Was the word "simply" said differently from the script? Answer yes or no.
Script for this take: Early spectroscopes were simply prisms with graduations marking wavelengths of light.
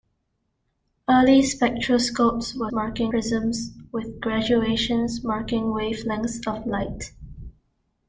yes